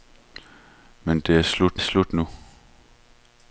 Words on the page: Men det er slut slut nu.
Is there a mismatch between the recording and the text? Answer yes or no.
no